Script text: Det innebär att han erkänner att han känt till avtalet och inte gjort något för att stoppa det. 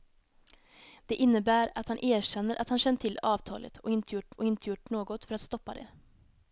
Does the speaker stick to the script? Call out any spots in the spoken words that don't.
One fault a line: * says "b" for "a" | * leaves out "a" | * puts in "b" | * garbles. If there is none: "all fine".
* puts in "och inte gjort"